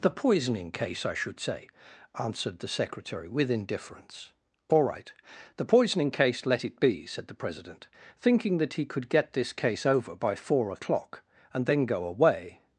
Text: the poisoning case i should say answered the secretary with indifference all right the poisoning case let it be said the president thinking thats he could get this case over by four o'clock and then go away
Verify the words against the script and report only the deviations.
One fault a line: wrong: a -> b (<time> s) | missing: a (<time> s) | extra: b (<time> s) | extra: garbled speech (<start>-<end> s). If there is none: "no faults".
wrong: thats -> that (8.6 s)